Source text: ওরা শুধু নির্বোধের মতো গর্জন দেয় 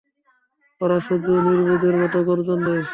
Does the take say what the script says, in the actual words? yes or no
yes